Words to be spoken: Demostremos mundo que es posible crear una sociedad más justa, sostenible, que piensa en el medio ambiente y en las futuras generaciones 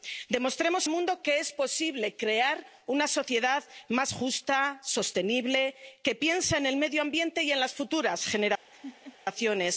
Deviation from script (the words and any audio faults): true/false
true